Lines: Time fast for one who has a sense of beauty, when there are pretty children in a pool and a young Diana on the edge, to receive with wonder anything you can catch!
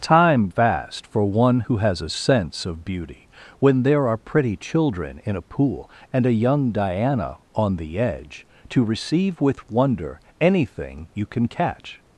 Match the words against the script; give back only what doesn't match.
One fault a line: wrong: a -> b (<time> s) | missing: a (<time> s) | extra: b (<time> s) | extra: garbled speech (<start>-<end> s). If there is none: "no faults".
no faults